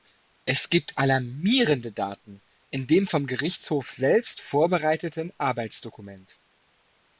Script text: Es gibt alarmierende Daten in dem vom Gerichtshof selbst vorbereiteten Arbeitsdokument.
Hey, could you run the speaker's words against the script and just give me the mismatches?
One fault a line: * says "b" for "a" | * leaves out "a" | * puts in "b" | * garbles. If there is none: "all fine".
all fine